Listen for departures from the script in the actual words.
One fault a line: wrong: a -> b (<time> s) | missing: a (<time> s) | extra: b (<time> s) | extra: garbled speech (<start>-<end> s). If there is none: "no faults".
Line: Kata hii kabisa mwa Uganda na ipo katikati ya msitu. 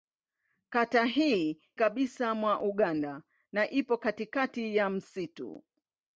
no faults